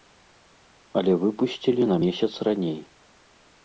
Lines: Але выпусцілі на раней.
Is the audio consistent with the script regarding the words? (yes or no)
no